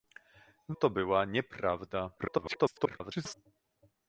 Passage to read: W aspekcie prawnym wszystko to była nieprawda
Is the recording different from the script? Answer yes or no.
yes